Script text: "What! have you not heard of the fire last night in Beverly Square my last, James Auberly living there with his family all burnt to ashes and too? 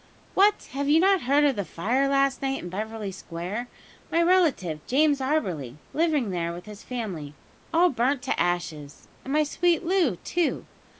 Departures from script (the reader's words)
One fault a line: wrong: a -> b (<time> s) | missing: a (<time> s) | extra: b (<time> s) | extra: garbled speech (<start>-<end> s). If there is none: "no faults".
wrong: last -> relative (4.2 s)
extra: my sweet Loo (9.3 s)